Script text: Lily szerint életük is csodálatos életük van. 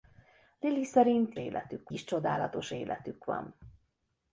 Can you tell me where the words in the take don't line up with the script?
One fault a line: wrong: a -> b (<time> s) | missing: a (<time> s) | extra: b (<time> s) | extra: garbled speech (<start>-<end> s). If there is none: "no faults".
no faults